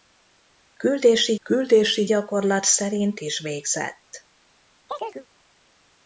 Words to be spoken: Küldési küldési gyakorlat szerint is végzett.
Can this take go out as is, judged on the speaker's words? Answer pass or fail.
pass